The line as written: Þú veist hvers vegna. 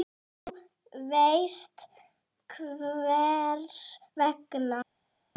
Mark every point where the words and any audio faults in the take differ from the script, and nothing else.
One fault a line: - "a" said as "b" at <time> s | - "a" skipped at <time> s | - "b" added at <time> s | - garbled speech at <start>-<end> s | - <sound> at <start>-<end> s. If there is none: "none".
none